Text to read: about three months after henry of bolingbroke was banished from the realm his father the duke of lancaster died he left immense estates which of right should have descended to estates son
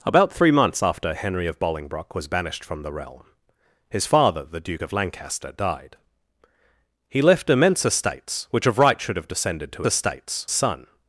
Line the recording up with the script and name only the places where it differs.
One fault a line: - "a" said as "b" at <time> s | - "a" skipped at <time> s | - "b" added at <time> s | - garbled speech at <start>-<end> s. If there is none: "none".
none